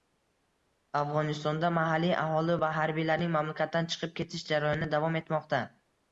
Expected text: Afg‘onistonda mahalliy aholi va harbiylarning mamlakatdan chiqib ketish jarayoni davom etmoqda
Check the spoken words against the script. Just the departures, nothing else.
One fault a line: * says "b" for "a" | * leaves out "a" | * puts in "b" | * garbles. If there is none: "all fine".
all fine